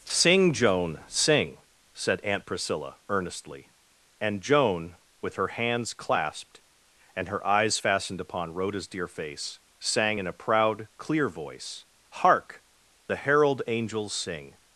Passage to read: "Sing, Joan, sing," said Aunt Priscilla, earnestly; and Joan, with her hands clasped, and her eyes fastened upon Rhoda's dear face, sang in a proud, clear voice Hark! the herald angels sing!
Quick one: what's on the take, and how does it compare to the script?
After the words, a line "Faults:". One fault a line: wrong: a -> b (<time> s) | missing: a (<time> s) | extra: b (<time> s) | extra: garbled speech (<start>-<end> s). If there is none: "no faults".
"Sing, Joan, sing," said Aunt Priscilla, earnestly; and Joan, with her hands clasped, and her eyes fastened upon Rhoda's dear face, sang in a proud, clear voice Hark! the herald angels sing!
Faults:
no faults